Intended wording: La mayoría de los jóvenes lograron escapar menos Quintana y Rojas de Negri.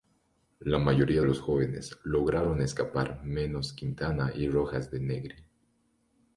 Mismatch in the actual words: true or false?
true